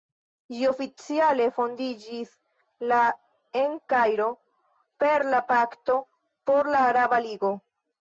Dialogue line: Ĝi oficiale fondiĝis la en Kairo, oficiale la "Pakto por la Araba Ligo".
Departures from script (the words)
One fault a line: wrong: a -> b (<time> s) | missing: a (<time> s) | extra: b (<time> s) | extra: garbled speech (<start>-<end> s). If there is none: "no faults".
wrong: oficiale -> per (5.1 s)